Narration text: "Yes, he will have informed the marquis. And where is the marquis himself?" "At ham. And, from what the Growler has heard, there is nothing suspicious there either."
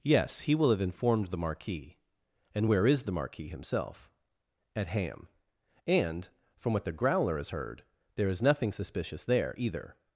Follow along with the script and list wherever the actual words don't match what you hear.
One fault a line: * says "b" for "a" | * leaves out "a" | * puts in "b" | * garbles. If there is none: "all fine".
all fine